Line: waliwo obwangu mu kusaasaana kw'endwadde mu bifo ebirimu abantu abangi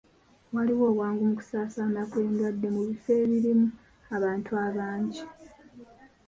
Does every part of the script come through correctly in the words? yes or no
yes